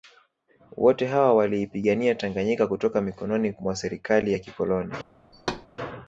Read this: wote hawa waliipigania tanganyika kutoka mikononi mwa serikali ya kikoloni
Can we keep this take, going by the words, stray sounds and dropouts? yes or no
no